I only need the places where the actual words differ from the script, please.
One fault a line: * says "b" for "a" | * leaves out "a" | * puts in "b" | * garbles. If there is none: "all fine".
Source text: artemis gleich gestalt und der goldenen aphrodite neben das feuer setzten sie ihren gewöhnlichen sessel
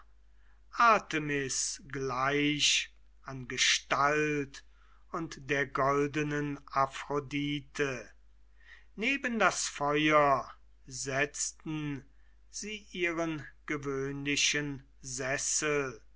* puts in "an"